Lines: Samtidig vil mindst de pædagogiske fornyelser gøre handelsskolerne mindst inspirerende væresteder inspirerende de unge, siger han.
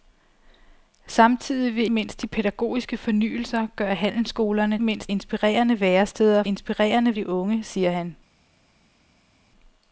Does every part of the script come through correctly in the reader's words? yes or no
yes